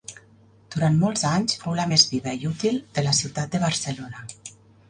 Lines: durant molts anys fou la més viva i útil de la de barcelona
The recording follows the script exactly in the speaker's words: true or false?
false